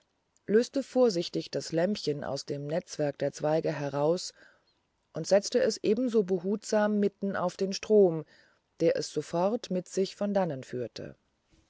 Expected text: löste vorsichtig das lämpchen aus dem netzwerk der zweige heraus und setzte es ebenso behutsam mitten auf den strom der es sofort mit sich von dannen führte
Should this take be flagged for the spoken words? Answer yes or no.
no